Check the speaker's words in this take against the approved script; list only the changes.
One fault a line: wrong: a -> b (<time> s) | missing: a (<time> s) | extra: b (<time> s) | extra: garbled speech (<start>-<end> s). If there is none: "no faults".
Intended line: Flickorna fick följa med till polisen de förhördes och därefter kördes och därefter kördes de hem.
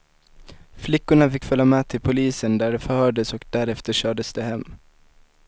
extra: där (2.6 s)
missing: och därefter kördes (4.3 s)